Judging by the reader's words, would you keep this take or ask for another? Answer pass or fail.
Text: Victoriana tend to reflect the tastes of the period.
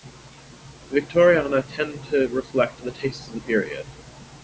pass